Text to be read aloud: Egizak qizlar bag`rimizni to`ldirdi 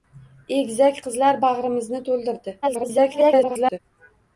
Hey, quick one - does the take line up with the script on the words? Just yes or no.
no